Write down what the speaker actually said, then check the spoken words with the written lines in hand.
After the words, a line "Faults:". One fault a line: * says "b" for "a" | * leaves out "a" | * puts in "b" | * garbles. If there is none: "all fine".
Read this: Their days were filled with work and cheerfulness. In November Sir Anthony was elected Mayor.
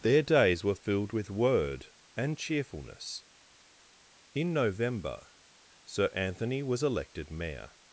Their days were filled with word and cheerfulness. In November Sir Anthony was elected Mayor.
Faults:
* says "word" for "work"